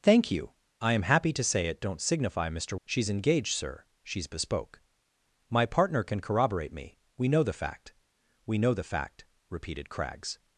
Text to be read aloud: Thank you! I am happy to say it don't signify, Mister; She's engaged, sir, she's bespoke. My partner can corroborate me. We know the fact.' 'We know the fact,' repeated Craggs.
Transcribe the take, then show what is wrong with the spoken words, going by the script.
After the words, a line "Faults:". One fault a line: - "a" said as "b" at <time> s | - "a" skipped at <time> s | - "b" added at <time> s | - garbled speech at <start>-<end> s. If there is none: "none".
Thank you! I am happy to say it don't signify, Mister; She's engaged, sir, she's bespoke. My partner can corroborate me. We know the fact.' 'We know the fact,' repeated Craggs.
Faults:
none